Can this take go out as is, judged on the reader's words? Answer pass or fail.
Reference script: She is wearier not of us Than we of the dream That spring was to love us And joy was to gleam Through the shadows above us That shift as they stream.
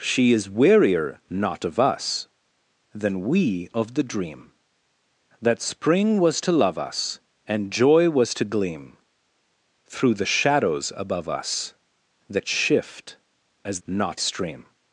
fail